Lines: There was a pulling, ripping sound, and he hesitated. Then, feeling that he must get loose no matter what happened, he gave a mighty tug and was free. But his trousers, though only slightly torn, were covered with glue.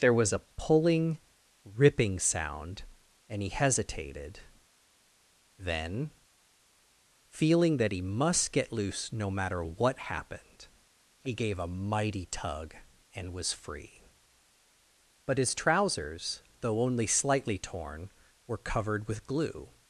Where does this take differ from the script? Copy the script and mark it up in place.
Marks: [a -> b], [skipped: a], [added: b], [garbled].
There was a pulling, ripping sound, and he hesitated. Then, feeling that he must get loose no matter what happened, he gave a mighty tug and was free. But his trousers, though only slightly torn, were covered with glue.